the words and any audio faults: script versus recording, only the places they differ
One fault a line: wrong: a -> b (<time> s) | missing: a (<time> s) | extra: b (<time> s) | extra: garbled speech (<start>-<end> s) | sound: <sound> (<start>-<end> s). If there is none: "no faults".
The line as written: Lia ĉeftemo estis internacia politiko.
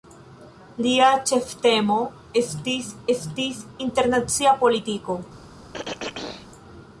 extra: estis (3.2 s)
sound: throat clearing (5.7-6.5 s)